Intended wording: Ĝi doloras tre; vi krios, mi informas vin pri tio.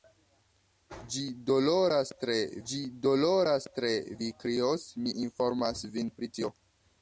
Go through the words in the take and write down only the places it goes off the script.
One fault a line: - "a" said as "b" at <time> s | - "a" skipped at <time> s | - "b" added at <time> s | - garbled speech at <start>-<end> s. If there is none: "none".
- "ĝi doloras tre" added at 2.7 s